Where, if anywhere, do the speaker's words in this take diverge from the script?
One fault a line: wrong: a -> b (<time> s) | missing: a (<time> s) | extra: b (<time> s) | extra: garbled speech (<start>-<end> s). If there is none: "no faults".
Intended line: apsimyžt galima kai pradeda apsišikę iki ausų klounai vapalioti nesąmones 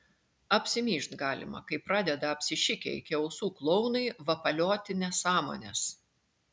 no faults